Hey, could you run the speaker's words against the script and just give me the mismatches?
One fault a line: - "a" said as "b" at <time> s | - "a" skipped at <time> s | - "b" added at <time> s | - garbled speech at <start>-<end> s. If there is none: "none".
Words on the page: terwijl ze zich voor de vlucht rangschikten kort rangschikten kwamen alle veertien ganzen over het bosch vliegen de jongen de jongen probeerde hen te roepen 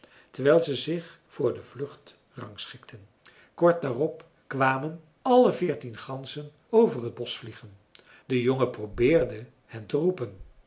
- "rangschikten" said as "daarop" at 3.8 s
- "de jongen" skipped at 8.7 s